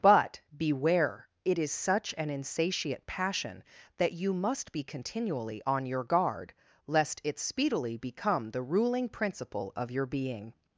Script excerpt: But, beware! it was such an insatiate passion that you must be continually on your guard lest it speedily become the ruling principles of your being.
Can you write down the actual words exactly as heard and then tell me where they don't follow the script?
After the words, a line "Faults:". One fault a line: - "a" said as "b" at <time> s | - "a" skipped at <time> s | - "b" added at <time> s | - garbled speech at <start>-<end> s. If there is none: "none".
But, beware! it is such an insatiate passion that you must be continually on your guard lest it speedily become the ruling principle of your being.
Faults:
- "was" said as "is" at 1.6 s
- "principles" said as "principle" at 9.1 s